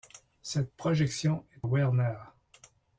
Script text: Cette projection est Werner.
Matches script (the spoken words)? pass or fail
pass